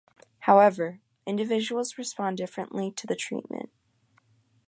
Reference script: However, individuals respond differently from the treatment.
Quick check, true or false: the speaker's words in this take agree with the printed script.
false